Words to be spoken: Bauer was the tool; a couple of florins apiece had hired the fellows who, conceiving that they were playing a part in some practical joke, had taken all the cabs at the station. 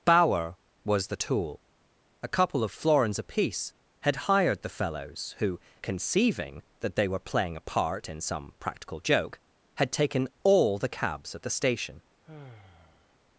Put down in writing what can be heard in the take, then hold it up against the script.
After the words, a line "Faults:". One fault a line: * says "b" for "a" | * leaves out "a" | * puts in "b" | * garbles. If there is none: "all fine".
Bauer was the tool; a couple of florins apiece had hired the fellows who, conceiving that they were playing a part in some practical joke, had taken all the cabs at the station.
Faults:
all fine